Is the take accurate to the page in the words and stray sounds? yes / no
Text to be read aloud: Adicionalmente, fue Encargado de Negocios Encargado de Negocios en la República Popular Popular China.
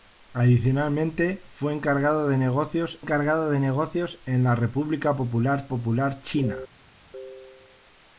yes